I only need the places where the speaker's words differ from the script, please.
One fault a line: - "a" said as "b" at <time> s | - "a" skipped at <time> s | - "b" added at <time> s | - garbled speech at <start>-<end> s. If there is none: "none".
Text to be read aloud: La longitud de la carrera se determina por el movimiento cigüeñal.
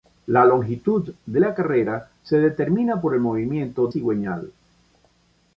none